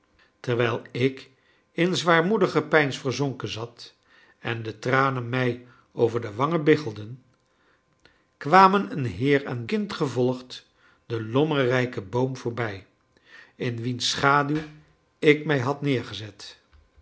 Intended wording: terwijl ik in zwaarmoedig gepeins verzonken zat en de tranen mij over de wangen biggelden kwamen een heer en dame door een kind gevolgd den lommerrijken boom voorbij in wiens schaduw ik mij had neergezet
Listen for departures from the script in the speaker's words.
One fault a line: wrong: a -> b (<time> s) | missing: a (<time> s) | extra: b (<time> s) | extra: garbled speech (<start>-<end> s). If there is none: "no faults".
missing: dame door een (9.7 s)